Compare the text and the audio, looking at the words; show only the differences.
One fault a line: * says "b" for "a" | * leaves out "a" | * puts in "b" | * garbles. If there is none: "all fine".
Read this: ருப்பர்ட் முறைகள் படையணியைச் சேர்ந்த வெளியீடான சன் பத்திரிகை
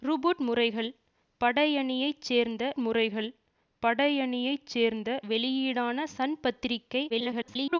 * puts in "முறைகள் படையணியைச் சேர்ந்த"
* garbles